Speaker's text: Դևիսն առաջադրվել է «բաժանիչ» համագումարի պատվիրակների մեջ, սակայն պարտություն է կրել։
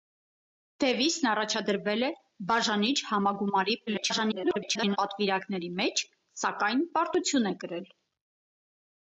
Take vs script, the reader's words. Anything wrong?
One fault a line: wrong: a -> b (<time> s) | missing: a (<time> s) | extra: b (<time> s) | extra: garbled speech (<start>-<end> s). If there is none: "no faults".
extra: garbled speech (3.9-5.0 s)